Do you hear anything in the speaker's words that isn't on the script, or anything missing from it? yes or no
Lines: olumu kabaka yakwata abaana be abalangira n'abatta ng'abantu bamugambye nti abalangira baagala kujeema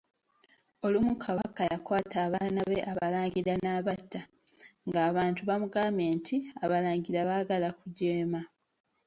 no